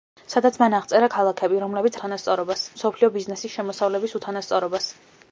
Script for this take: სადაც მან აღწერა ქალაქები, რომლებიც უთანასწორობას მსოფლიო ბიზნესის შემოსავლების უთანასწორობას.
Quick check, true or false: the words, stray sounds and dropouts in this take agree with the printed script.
true